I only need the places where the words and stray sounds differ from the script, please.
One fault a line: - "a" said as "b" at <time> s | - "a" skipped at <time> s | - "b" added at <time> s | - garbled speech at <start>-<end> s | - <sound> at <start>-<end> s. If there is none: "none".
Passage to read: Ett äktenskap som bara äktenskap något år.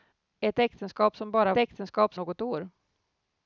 none